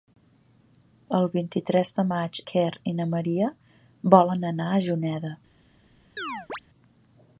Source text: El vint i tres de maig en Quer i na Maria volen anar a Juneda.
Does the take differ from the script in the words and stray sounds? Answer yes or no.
yes